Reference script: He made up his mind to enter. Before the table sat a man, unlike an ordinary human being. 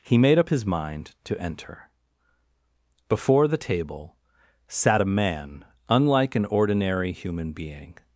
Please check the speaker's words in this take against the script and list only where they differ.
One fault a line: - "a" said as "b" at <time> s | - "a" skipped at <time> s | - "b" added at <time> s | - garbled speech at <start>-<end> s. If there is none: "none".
none